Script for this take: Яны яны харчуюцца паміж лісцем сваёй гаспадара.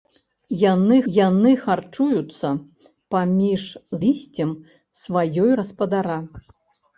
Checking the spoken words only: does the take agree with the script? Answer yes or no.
yes